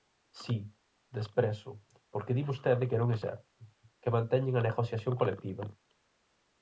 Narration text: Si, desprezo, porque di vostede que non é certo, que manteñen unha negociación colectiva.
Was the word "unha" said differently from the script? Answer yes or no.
yes